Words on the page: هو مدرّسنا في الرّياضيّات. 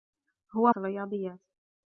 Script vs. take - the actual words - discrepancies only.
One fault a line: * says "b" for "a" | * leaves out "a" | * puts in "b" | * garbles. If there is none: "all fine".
* leaves out "مدرّسنا"